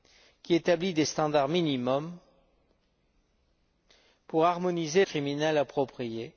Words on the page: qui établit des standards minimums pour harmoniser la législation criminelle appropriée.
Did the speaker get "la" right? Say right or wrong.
wrong